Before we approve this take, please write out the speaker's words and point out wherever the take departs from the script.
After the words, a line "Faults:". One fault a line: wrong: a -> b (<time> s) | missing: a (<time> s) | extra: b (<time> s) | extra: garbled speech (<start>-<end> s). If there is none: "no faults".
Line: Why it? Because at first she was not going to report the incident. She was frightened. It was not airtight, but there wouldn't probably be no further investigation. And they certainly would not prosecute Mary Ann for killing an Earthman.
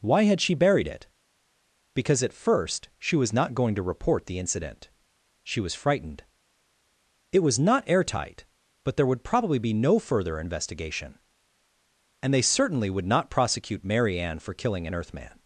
Why had she buried it? Because at first she was not going to report the incident. She was frightened. It was not airtight, but there would probably be no further investigation. And they certainly would not prosecute Mary Ann for killing an Earthman.
Faults:
extra: had she buried (0.2 s)
wrong: wouldn't -> would (9.1 s)